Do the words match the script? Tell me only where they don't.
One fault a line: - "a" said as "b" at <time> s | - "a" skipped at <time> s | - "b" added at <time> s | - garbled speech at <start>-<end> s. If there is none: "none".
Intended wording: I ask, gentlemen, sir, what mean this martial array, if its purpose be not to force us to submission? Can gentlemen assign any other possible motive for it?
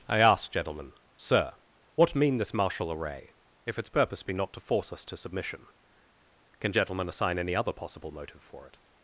none